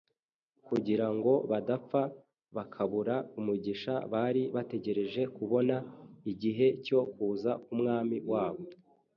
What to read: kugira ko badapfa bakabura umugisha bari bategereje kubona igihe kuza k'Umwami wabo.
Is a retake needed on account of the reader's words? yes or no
yes